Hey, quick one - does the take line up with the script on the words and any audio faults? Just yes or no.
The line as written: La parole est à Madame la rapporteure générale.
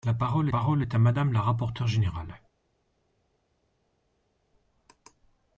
no